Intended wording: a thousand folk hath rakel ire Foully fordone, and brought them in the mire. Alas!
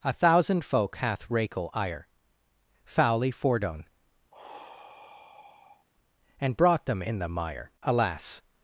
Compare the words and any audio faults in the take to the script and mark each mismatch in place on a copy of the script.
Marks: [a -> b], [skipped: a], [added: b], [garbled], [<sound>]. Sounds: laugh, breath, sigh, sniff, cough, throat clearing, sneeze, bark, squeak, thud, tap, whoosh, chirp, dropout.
a thousand folk hath rakel ire Foully fordone, [sigh] and brought them in the mire. Alas!